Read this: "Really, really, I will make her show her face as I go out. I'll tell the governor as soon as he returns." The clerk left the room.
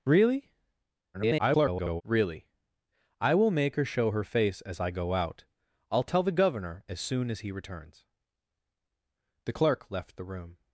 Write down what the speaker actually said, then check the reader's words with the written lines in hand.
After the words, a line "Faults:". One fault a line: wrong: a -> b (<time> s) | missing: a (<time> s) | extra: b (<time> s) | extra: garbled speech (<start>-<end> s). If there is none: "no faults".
"Really, [garbled] really, I will make her show her face as I go out. I'll tell the governor as soon as he returns." The clerk left the room.
Faults:
extra: garbled speech (1.1-2.0 s)